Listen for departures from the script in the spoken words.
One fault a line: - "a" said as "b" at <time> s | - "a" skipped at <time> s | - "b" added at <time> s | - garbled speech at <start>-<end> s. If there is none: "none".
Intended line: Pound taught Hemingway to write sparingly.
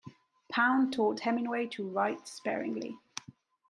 none